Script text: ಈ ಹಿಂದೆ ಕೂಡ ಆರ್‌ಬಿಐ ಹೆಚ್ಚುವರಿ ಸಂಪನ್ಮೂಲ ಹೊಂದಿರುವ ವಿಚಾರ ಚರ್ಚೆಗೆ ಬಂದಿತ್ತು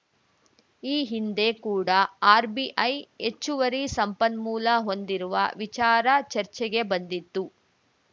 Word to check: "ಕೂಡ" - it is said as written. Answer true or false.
true